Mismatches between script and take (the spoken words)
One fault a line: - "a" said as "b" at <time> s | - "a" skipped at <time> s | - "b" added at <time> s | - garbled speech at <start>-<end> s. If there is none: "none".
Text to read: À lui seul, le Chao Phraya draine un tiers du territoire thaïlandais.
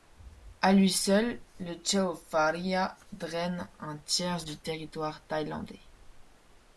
none